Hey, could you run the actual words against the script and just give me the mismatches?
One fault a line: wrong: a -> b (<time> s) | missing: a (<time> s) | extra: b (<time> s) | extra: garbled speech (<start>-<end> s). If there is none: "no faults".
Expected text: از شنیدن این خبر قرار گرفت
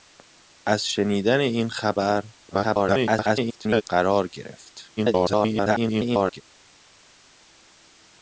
extra: garbled speech (2.5-3.8 s)
extra: garbled speech (5.0-6.4 s)